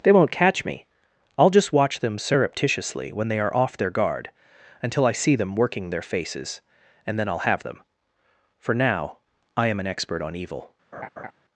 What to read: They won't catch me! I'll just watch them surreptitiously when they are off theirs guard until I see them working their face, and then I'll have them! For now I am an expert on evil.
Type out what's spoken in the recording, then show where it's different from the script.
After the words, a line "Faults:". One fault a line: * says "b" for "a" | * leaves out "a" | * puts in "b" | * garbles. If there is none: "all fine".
They won't catch me! I'll just watch them surreptitiously when they are off their guard until I see them working their faces, and then I'll have them! For now I am an expert on evil.
Faults:
* says "their" for "theirs"
* says "faces" for "face"